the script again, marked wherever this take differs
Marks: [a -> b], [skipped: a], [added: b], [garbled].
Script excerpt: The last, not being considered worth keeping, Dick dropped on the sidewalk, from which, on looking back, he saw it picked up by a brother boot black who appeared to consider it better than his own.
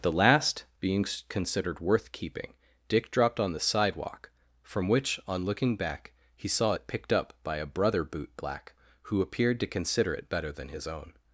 The last, [skipped: not] being considered worth keeping, Dick dropped on the sidewalk, from which, on looking back, he saw it picked up by a brother boot black who appeared to consider it better than his own.